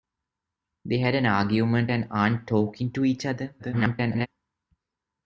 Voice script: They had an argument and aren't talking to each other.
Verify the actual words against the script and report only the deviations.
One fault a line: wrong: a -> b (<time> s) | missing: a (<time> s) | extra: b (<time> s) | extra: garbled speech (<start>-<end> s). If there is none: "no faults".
extra: garbled speech (3.6-4.3 s)